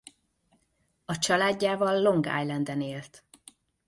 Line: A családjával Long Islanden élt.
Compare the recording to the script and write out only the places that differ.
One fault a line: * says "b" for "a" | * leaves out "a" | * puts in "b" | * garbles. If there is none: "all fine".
all fine